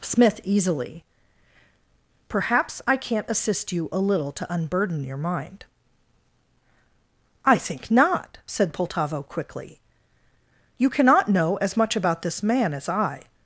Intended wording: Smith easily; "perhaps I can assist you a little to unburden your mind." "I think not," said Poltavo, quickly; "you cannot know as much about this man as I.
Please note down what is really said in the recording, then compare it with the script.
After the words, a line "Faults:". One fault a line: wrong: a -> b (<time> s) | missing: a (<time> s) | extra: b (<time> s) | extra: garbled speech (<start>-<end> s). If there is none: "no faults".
Smith easily; "perhaps I can't assist you a little to unburden your mind." "I think not," said Poltavo, quickly; "you cannot know as much about this man as I.
Faults:
wrong: can -> can't (3.0 s)